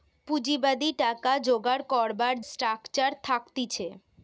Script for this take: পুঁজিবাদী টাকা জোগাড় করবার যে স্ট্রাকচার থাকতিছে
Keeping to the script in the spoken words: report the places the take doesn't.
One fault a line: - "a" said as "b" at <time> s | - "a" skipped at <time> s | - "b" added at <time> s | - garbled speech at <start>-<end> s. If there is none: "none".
- "যে" skipped at 2.3 s